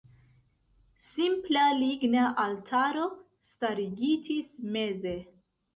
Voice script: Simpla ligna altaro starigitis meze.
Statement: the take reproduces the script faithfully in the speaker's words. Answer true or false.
true